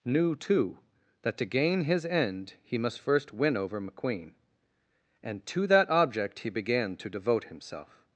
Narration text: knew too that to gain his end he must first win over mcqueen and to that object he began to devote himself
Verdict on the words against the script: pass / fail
pass